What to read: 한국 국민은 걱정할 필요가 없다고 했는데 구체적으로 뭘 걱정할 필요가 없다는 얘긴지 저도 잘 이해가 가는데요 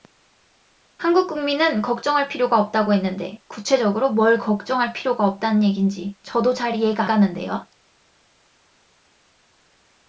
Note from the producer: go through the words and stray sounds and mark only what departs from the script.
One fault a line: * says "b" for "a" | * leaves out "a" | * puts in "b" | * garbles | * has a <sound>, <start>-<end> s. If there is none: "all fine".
all fine